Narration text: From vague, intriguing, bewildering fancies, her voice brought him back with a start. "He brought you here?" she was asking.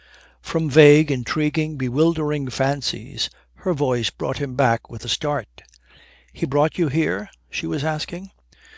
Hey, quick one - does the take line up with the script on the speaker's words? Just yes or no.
yes